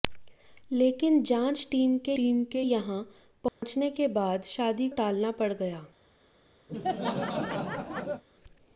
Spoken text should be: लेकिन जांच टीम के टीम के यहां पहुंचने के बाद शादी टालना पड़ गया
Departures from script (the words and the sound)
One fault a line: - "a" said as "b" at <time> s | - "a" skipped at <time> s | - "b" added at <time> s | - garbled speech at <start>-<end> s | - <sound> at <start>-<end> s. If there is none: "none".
- dropout at 3.5-3.6 s
- laugh at 6.7-8.2 s